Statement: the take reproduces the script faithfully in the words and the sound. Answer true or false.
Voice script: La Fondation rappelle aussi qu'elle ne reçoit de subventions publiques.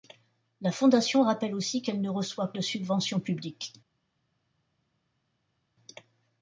true